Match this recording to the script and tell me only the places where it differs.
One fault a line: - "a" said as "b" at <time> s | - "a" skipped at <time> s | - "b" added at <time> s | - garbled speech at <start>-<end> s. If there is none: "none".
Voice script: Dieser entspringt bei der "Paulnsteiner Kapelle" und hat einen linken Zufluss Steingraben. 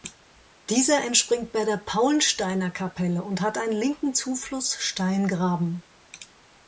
none